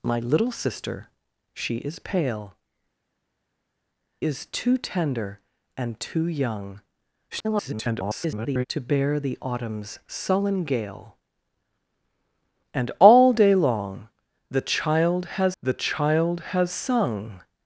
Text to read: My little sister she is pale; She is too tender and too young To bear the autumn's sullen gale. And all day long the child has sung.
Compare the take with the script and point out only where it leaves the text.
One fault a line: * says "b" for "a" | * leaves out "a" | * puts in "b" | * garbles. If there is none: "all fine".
* leaves out "She"
* garbles
* puts in "the child has"